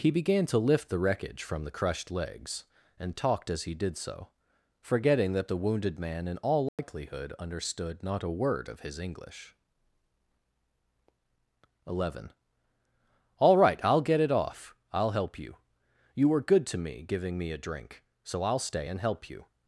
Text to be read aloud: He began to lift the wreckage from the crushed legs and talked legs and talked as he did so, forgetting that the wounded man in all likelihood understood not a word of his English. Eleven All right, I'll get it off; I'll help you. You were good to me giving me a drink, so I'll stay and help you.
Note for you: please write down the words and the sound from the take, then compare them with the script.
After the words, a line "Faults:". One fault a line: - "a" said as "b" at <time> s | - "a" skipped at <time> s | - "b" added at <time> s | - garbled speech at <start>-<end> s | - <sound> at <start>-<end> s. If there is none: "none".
He began to lift the wreckage from the crushed legs and talked as he did so, forgetting that the wounded man in all likelihood understood not a word of his English. Eleven All right, I'll get it off; I'll help you. You were good to me giving me a drink, so I'll stay and help you.
Faults:
- "legs and talked" skipped at 3.5 s
- dropout at 6.7-6.8 s